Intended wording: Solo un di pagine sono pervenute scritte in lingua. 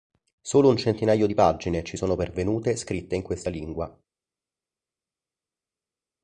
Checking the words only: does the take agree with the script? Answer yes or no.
no